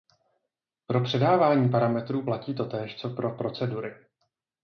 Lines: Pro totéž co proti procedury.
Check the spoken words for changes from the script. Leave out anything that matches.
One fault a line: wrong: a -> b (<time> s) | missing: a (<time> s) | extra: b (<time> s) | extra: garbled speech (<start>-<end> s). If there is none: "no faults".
extra: předávání parametrů platí (1.0 s)
wrong: proti -> pro (3.1 s)